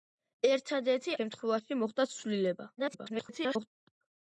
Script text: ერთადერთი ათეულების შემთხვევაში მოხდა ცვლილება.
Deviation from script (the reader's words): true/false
true